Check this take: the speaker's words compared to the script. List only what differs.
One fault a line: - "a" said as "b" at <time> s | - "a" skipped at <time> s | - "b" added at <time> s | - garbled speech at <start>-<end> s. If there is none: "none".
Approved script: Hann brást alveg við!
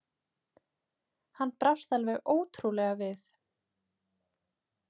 - "ótrúlega" added at 2.4 s